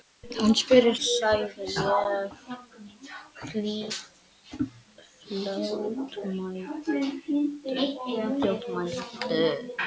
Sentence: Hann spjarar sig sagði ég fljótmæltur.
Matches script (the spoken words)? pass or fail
fail